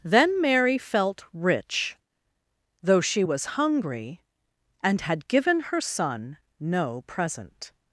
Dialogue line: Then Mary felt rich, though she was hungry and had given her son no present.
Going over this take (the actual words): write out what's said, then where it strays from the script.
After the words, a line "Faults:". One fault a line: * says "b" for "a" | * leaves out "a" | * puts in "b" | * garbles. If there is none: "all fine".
Then Mary felt rich, though she was hungry and had given her son no present.
Faults:
all fine